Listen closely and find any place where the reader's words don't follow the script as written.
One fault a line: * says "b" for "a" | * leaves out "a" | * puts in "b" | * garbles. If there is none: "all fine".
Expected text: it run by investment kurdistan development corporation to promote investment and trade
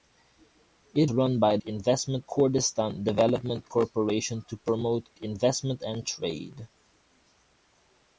all fine